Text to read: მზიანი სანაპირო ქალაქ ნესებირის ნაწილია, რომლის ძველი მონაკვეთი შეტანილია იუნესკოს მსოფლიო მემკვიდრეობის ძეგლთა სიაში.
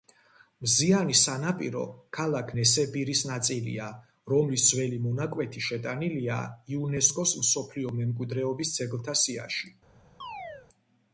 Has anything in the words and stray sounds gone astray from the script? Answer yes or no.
yes